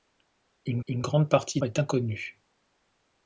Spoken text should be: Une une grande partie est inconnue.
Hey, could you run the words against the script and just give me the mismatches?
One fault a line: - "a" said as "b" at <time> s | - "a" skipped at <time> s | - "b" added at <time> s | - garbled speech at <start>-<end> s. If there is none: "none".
none